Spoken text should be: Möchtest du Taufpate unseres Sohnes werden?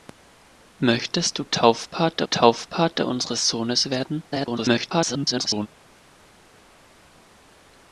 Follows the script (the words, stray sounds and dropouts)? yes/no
no